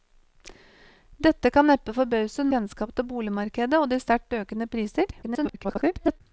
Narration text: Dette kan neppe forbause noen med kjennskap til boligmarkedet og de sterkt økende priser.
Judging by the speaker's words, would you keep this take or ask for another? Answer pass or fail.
fail